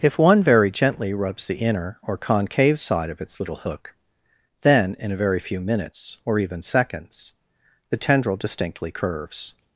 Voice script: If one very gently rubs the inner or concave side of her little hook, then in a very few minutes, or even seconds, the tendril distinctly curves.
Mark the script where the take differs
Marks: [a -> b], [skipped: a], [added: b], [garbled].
If one very gently rubs the inner or concave side of [her -> its] little hook, then in a very few minutes, or even seconds, the tendril distinctly curves.